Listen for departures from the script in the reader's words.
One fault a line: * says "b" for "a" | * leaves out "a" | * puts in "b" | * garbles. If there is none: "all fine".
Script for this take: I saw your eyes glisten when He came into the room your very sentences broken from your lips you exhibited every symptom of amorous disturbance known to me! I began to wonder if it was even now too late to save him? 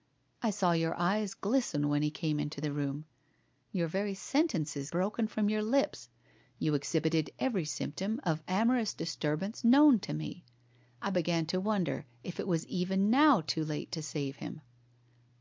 all fine